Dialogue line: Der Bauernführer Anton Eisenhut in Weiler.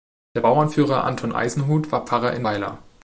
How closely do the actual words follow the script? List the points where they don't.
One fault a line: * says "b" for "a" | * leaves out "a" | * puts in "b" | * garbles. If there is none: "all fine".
* puts in "war Pfarrer"